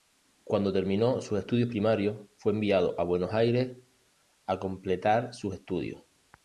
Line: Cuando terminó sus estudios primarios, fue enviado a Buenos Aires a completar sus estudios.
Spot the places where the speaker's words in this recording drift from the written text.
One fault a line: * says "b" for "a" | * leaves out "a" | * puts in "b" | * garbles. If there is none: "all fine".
all fine